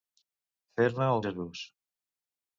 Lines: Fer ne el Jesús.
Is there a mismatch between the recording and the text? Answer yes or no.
no